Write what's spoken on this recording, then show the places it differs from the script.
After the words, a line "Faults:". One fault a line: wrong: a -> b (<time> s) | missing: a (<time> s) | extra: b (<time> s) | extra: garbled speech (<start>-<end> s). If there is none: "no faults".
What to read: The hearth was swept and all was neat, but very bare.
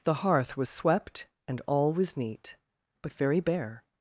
The hearth was swept and all was neat, but very bare.
Faults:
no faults